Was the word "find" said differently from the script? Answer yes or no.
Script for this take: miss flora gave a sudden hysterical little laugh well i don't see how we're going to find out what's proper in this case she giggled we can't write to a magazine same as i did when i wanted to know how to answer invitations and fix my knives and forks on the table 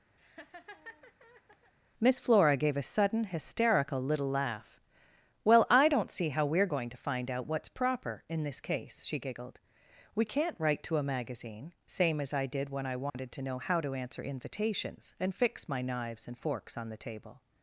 no